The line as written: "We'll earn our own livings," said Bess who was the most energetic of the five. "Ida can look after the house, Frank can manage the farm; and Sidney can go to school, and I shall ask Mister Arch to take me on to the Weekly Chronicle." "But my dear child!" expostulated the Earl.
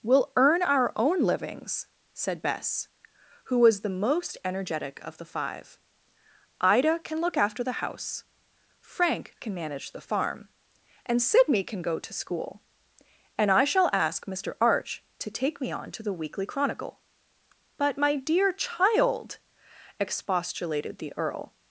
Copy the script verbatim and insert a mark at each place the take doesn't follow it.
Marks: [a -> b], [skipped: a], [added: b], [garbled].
"We'll earn our own livings," said Bess who was the most energetic of the five. "Ida can look after the house, Frank can manage the farm; and Sidney can go to school, and I shall ask Mister Arch to take me on to the Weekly Chronicle." "But my dear child!" expostulated the Earl.